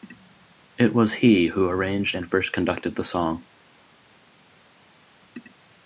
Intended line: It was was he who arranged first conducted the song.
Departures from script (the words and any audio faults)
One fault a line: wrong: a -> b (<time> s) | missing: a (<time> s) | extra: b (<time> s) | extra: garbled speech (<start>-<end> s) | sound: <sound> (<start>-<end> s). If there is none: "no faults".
missing: was (1.1 s)
extra: and (2.1 s)